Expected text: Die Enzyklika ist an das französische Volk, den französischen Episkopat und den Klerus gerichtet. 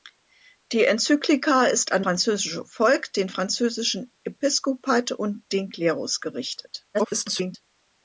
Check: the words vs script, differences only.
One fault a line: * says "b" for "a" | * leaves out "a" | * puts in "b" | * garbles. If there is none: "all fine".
* leaves out "das"
* garbles